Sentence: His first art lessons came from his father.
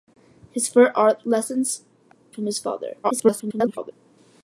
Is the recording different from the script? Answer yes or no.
yes